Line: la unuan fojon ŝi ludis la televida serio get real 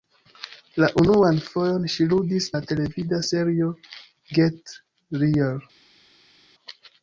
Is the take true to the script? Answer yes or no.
yes